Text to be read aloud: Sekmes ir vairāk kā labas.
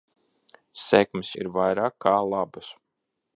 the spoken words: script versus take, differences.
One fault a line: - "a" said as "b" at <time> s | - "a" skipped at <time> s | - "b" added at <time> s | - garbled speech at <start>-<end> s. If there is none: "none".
none